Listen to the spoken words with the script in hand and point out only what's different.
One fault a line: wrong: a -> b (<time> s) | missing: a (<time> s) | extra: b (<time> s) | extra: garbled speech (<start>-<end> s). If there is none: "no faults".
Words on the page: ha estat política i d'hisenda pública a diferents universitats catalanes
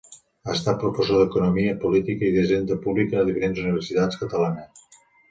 extra: professor d'economia (0.8 s)